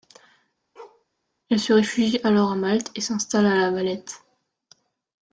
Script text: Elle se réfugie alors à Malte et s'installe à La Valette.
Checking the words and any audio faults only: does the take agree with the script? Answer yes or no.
no